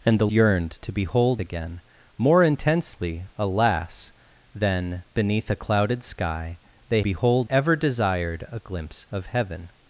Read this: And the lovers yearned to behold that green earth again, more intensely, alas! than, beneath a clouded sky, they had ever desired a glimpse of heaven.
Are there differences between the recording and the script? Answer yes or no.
yes